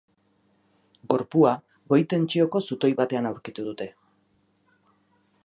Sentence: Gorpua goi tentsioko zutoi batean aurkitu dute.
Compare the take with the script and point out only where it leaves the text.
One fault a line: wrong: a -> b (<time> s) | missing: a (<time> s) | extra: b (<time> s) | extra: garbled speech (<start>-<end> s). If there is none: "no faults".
no faults